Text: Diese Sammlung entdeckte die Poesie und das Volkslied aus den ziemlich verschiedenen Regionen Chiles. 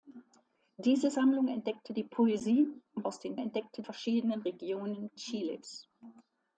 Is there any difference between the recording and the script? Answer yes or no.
yes